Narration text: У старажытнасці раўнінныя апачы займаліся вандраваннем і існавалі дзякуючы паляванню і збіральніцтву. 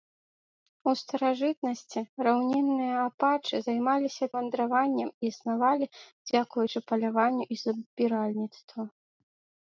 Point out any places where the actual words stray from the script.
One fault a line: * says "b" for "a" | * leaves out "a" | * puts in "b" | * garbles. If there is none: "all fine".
all fine